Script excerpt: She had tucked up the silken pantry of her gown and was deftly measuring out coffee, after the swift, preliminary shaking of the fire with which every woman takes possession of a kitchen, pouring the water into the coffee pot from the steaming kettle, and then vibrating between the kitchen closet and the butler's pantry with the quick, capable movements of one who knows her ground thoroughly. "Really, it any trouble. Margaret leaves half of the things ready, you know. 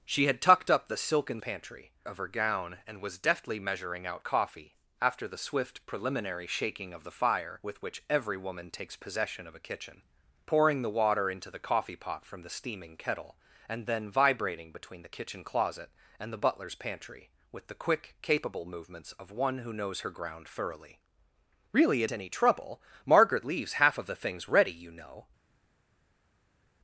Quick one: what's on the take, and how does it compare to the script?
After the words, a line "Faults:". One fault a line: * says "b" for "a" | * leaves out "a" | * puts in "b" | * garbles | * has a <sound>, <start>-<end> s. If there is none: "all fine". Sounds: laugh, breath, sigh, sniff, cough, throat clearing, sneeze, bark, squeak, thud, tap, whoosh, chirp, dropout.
She had tucked up the silken pantry of her gown and was deftly measuring out coffee, after the swift, preliminary shaking of the fire with which every woman takes possession of a kitchen, pouring the water into the coffee pot from the steaming kettle, and then vibrating between the kitchen closet and the butler's pantry with the quick, capable movements of one who knows her ground thoroughly. "Really, it any trouble. Margaret leaves half of the things ready, you know.
Faults:
all fine